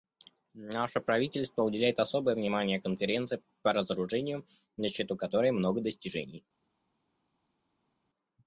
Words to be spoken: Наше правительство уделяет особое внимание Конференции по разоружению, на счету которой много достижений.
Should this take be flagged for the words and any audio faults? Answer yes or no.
no